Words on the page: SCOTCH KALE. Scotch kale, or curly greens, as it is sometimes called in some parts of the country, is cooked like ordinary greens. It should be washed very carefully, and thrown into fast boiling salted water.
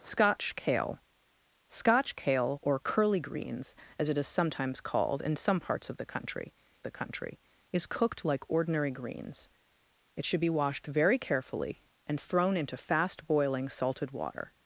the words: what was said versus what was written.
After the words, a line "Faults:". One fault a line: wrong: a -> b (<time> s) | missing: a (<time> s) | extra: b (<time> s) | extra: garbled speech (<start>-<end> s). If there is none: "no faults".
SCOTCH KALE. Scotch kale, or curly greens, as it is sometimes called in some parts of the country the country, is cooked like ordinary greens. It should be washed very carefully, and thrown into fast boiling salted water.
Faults:
extra: the country (6.8 s)